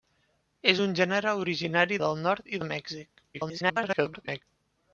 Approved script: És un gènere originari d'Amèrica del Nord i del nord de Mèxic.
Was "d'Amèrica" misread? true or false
true